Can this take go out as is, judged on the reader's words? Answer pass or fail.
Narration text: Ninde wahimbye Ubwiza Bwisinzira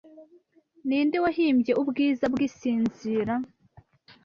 pass